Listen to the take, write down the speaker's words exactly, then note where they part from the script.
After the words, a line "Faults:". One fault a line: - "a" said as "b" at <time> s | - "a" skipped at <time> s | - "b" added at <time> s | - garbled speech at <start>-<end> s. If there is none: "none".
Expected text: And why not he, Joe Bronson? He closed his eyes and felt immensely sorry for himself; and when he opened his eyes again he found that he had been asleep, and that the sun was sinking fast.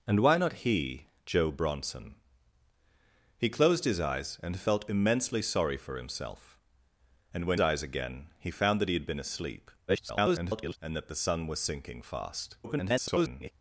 And why not he, Joe Bronson? He closed his eyes and felt immensely sorry for himself; and when eyes again he found that he had been asleep, [garbled] and that the sun was sinking fast. [garbled]
Faults:
- "he opened his" skipped at 7.6 s
- garbled speech at 9.9-10.8 s
- garbled speech at 12.6-13.5 s